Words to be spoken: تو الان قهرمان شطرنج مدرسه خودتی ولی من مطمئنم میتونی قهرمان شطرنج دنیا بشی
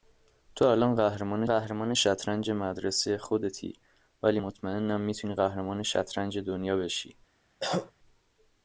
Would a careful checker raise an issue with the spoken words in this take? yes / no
yes